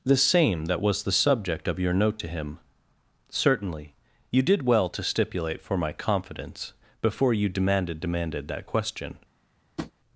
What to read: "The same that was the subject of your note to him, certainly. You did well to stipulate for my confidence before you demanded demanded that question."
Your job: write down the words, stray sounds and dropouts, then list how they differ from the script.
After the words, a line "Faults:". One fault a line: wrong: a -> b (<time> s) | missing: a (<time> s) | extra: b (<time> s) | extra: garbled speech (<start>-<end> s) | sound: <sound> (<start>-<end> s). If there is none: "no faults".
"The same that was the subject of your note to him, certainly. You did well to stipulate for my confidence before you demanded demanded that question."
Faults:
sound: tap (9.8-9.9 s)